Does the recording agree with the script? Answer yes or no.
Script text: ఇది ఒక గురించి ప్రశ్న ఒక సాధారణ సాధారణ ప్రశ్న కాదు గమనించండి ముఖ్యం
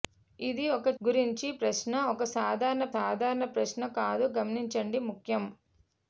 yes